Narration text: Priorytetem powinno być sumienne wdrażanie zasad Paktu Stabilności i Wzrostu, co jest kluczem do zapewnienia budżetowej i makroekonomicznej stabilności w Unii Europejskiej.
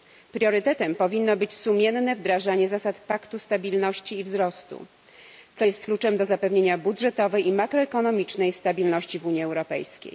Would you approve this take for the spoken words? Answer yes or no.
yes